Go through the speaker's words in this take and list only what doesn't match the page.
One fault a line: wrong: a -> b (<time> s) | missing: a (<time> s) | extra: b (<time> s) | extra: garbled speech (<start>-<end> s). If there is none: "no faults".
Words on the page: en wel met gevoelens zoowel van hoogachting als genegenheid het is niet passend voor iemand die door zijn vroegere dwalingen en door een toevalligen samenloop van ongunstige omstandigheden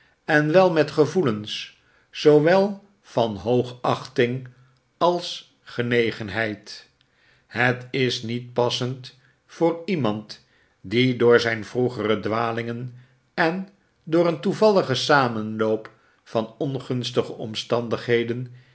no faults